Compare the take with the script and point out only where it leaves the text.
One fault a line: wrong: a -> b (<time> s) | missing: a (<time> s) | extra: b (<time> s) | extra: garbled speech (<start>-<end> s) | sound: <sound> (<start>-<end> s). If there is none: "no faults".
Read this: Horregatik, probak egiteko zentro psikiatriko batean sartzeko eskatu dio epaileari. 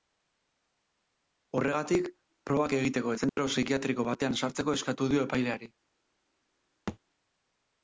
sound: dropout (3.3-3.4 s)
sound: thud (6.9-7.0 s)